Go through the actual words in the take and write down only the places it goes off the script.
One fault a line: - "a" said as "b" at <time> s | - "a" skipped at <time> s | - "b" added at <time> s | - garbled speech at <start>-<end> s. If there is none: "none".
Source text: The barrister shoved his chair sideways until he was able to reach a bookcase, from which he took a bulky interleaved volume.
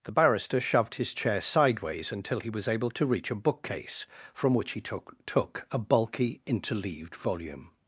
- "took" added at 5.2 s